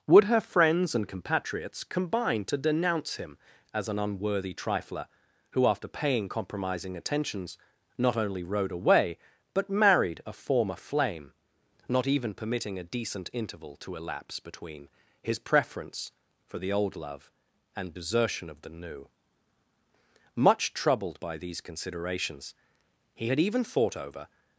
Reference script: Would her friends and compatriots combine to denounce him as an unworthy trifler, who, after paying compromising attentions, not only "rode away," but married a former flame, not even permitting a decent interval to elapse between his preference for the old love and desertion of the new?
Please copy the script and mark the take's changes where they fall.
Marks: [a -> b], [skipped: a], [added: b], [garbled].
Would her friends and compatriots combine to denounce him as an unworthy trifler, who, after paying compromising attentions, not only "rode away," but married a former flame, not even permitting a decent interval to elapse between his preference for the old love and desertion of the new? [added: Much troubled by these considerations he had even thought over]